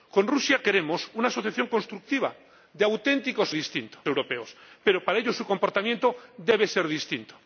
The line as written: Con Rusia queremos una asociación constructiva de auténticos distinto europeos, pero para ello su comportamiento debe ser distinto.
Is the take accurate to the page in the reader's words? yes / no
yes